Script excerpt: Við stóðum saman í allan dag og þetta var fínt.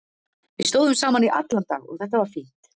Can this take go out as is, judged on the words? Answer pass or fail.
pass